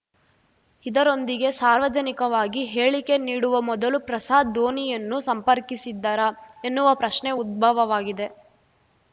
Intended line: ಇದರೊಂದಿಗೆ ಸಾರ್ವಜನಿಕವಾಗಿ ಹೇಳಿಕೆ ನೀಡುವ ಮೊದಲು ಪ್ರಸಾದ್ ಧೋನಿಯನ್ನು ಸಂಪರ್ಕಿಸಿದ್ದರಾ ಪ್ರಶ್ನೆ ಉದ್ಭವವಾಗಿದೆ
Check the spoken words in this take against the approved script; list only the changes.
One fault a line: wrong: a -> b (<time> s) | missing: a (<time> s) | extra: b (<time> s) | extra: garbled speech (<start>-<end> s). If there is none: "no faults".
extra: ಎನ್ನುವ (6.6 s)